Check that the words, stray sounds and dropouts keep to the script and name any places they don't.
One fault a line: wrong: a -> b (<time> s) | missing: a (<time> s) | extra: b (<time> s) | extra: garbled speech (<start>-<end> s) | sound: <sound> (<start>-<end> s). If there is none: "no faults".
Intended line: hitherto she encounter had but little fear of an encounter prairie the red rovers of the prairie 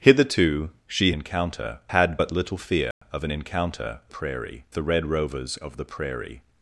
sound: dropout (2.9-3.0 s)